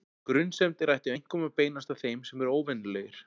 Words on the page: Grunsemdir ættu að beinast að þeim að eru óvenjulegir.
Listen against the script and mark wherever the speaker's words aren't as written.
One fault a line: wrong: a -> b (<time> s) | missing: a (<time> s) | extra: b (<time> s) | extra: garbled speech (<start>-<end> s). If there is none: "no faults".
extra: einkum (1.1 s)
wrong: að -> sem (2.3 s)